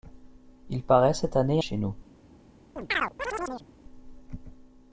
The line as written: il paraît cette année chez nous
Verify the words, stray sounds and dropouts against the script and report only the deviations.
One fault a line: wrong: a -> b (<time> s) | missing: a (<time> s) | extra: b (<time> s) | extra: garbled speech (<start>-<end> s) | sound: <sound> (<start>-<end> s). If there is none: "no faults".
sound: chirp (2.8-3.7 s)